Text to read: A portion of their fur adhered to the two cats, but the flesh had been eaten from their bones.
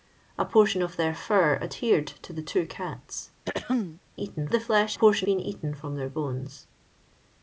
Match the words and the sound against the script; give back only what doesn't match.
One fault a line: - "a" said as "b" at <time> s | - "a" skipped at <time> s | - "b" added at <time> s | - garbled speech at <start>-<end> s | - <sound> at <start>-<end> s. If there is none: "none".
- throat clearing at 3.5-4.0 s
- "but" said as "eaten" at 4.1 s
- "had" said as "portion" at 4.9 s